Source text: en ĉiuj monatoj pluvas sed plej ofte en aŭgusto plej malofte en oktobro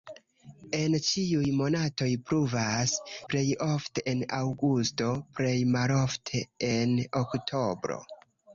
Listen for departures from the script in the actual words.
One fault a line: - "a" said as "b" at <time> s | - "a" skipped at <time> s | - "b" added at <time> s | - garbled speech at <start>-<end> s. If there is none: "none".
- "sed" skipped at 2.9 s